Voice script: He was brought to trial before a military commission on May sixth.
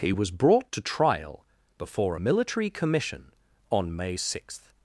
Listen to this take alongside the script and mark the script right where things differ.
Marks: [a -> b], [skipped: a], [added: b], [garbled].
He was brought to trial before a military commission on May sixth.